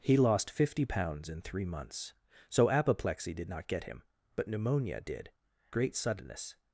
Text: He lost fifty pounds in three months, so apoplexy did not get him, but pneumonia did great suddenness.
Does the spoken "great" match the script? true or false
true